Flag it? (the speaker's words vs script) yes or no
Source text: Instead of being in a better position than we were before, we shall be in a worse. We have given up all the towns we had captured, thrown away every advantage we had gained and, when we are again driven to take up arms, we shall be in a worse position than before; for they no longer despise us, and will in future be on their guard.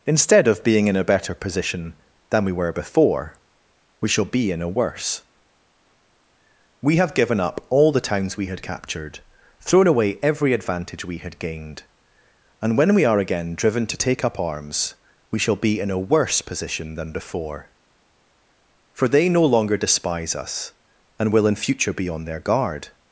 no